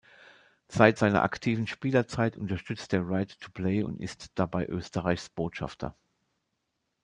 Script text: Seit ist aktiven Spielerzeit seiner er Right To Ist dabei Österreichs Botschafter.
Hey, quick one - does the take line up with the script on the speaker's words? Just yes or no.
no